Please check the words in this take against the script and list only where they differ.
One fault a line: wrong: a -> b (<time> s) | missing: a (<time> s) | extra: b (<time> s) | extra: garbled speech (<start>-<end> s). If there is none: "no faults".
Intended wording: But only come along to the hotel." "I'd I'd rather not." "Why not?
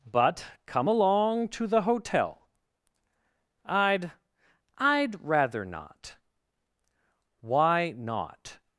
missing: only (0.5 s)